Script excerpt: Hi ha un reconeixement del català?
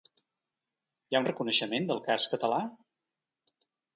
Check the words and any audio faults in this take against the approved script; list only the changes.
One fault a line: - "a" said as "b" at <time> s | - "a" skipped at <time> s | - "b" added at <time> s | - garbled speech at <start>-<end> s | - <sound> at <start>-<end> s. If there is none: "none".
- "cas" added at 2.1 s